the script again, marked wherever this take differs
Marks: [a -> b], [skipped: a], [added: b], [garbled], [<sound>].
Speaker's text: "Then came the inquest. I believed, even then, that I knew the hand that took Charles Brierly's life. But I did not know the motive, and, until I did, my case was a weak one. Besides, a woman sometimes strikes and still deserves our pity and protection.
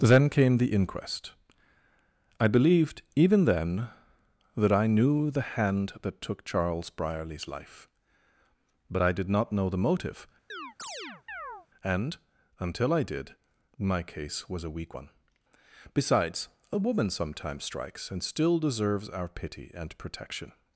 "Then came the inquest. I believed, even then, that I knew the hand that took Charles Brierly's life. But I did not know the motive, [chirp] and, until I did, my case was a weak one. Besides, a woman sometimes strikes and still deserves our pity and protection.